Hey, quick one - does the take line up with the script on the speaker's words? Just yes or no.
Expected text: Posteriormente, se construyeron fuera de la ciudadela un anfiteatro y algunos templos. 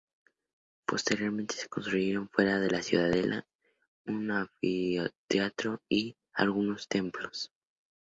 yes